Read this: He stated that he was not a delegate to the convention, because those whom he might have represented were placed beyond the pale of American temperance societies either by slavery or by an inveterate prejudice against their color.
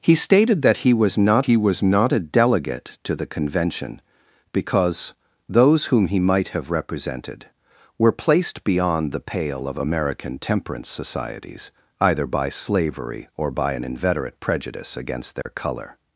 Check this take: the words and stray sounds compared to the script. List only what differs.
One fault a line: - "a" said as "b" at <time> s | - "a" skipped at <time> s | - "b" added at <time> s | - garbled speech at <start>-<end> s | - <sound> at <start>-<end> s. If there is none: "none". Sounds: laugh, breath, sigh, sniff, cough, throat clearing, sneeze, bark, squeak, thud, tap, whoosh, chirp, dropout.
- "he was not" added at 1.4 s
- dropout at 15.4-15.5 s